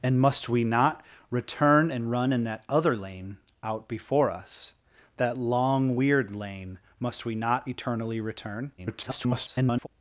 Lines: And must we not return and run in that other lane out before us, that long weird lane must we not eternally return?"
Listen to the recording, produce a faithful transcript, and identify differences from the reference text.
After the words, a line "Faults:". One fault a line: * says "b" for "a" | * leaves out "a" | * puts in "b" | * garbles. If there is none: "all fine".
And must we not return and run in that other lane out before us, that long weird lane must we not eternally return?" [garbled]
Faults:
* garbles